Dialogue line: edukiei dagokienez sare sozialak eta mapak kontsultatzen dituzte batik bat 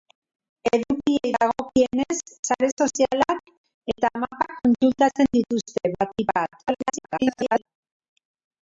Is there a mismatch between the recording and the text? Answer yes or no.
yes